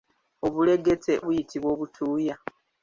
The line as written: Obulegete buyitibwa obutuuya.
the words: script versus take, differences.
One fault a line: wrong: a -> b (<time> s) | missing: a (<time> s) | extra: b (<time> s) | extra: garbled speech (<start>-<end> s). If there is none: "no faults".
no faults